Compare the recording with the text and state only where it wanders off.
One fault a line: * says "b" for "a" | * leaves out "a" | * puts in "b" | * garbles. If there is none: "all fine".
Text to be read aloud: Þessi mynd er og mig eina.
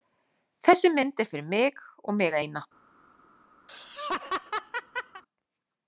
* puts in "fyrir mig"